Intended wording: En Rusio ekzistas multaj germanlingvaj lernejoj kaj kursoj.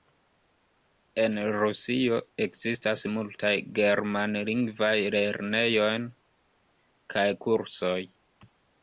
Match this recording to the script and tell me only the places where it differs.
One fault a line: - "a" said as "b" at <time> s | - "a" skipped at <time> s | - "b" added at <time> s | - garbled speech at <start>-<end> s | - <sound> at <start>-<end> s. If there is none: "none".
none